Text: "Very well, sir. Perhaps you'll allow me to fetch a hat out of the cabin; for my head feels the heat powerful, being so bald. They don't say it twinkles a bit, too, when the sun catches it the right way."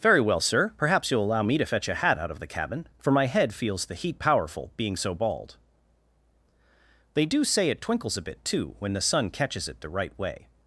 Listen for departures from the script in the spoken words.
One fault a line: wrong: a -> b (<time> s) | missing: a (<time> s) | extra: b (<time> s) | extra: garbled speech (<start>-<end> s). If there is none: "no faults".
wrong: don't -> do (7.3 s)